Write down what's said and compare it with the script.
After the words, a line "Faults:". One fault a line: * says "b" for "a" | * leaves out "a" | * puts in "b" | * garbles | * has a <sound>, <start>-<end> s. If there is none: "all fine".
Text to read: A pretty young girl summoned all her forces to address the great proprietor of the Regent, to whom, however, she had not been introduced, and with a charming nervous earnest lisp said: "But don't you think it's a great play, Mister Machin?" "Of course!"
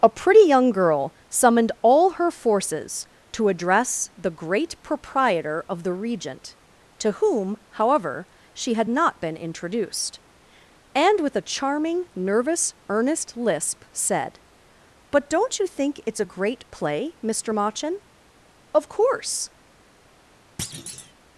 A pretty young girl summoned all her forces to address the great proprietor of the Regent, to whom, however, she had not been introduced, and with a charming nervous earnest lisp said: "But don't you think it's a great play, Mister Machin?" "Of course!"
Faults:
* has a thud, 20.6-21.1 s